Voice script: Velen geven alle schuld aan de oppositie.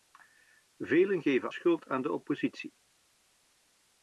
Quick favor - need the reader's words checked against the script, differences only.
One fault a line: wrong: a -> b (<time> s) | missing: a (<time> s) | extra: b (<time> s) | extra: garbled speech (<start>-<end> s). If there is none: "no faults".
missing: alle (1.5 s)